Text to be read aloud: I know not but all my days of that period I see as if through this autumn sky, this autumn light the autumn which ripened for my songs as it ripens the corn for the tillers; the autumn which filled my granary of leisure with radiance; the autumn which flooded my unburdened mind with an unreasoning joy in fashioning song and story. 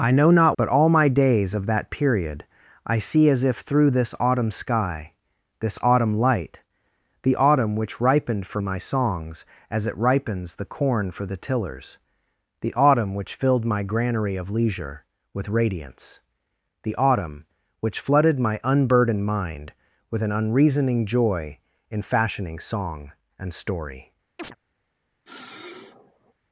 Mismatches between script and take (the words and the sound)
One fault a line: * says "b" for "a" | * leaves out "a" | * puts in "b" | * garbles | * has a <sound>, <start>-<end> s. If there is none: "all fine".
* has a chirp, 24.4-24.6 s
* has a sniff, 25.2-26.3 s